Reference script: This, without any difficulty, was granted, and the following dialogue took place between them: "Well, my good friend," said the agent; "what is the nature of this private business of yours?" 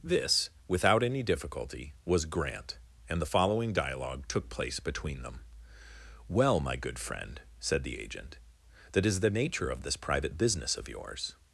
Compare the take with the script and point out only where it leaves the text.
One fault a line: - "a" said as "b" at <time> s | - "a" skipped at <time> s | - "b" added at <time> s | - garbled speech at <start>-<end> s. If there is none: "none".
- "granted" said as "grant" at 2.2 s
- "what" said as "that" at 8.9 s